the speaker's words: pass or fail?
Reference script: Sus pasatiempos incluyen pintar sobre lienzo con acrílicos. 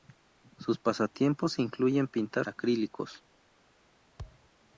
fail